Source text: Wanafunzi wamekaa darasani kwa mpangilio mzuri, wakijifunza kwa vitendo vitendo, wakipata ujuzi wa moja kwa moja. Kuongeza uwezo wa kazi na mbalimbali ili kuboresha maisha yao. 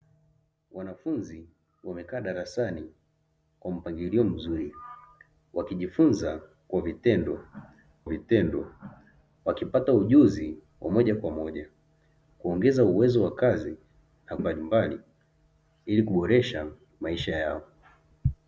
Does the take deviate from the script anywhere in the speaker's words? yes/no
no